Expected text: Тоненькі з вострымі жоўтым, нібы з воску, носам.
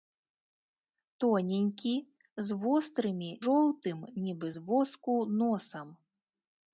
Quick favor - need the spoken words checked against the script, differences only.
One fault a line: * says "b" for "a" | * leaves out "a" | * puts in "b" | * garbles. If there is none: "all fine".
all fine